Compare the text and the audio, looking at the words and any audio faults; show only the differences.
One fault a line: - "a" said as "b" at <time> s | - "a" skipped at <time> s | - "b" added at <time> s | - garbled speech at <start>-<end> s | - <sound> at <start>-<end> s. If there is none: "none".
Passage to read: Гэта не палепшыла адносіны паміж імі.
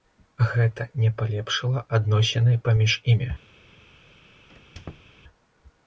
- squeak at 4.5-5.1 s